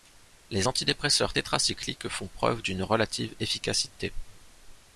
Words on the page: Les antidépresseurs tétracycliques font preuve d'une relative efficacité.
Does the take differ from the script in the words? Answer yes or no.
no